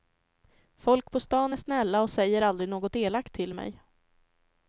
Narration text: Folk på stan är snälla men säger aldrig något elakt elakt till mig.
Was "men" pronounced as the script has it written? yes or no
no